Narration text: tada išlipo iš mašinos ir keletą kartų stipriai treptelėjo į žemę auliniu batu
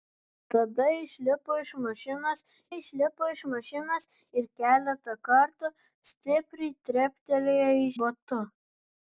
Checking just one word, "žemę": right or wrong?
wrong